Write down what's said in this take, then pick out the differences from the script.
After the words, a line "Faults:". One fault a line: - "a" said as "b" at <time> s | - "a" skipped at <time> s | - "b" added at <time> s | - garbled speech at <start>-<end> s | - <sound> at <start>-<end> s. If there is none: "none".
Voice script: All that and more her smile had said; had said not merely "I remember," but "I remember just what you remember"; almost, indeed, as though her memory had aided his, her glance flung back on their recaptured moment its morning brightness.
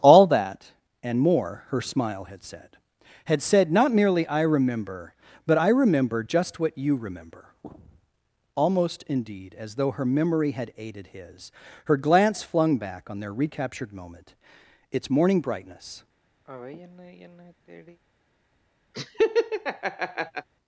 All that and more her smile had said; had said not merely "I remember," but "I remember just what you remember"; almost, indeed, as though her memory had aided his, her glance flung back on their recaptured moment its morning brightness.
Faults:
- sigh at 16.4-18.0 s
- laugh at 18.9-20.5 s